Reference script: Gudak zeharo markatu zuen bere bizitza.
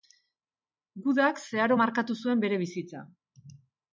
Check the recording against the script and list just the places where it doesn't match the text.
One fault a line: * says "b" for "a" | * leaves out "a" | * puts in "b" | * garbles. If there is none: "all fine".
all fine